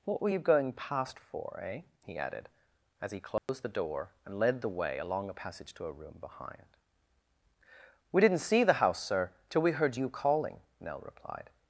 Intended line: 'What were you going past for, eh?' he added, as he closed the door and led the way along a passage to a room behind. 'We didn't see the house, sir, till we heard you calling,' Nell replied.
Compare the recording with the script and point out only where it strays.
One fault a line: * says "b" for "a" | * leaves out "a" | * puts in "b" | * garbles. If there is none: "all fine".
all fine